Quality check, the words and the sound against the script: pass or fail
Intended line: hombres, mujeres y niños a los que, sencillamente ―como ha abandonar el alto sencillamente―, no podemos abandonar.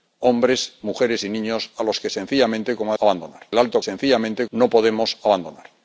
pass